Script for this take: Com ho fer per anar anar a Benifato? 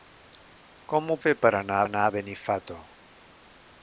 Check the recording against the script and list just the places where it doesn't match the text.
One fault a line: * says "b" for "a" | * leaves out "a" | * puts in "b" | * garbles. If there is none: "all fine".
all fine